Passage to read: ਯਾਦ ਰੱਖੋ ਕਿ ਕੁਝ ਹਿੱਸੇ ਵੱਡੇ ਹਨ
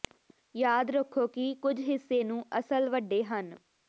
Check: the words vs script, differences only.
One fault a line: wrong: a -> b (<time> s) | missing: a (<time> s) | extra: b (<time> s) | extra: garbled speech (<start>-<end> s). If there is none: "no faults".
extra: ਨੂੰ ਅਸਲ (2.2 s)